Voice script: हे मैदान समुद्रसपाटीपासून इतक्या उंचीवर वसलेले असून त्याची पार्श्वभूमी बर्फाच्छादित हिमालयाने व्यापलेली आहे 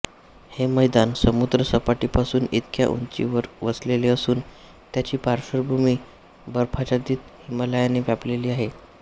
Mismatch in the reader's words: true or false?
false